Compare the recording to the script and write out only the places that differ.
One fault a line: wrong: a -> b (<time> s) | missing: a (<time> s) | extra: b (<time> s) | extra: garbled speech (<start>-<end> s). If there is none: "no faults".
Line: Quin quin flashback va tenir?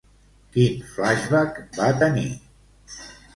missing: quin (0.8 s)